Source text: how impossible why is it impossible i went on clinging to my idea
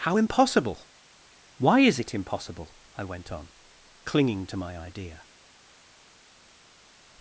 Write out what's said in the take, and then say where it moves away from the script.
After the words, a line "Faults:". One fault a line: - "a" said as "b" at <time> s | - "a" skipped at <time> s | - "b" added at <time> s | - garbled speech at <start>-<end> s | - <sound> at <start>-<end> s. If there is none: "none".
how impossible why is it impossible i went on clinging to my idea
Faults:
none